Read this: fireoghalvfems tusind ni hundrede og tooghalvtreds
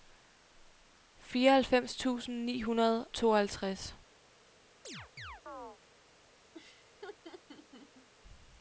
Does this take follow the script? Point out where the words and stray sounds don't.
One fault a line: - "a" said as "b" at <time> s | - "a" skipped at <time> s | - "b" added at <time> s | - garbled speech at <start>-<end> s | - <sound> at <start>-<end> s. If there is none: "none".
- "og" skipped at 3.1 s
- chirp at 4.8-5.8 s
- laugh at 6.5-8.1 s